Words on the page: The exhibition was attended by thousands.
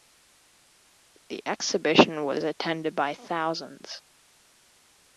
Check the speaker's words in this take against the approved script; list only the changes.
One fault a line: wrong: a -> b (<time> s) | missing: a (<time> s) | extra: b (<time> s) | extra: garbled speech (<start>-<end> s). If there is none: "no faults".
no faults